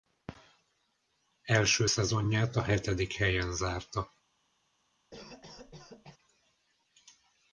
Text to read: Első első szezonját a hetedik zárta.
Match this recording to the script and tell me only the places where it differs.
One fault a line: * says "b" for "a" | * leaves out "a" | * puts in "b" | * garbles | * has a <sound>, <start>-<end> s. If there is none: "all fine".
* leaves out "első"
* puts in "helyen"
* has a cough, 5.1-6.2 s